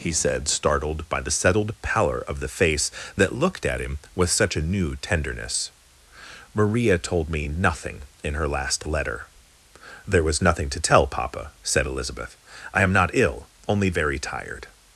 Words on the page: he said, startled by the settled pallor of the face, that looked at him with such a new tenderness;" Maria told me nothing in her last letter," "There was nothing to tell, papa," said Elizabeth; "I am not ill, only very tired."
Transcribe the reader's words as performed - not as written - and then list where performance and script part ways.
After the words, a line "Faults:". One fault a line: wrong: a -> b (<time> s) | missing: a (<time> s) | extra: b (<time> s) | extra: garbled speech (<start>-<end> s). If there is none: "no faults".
he said, startled by the settled pallor of the face, that looked at him with such a new tenderness;" Maria told me nothing in her last letter," "There was nothing to tell, papa," said Elizabeth; "I am not ill, only very tired."
Faults:
no faults